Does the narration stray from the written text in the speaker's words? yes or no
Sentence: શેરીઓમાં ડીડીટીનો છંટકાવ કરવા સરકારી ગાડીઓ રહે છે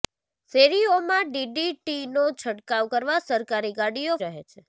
no